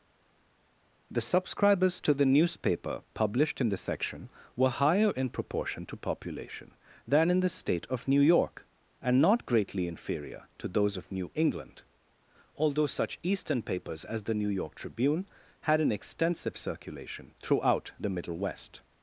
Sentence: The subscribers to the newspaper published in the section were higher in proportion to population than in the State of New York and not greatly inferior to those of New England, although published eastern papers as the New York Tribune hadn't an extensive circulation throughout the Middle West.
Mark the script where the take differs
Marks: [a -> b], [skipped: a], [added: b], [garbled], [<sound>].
The subscribers to the newspaper published in the section were higher in proportion to population than in the State of New York and not greatly inferior to those of New England, although [published -> such] eastern papers as the New York Tribune [hadn't -> had] an extensive circulation throughout the Middle West.